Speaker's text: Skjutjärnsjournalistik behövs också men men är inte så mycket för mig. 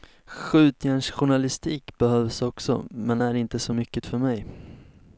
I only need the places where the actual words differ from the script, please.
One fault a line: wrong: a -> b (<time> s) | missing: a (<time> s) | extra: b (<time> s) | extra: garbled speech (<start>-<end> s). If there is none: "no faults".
missing: men (3.2 s)